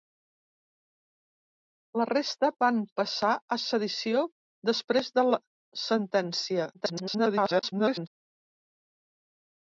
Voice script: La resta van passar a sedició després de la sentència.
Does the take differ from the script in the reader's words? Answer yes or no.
yes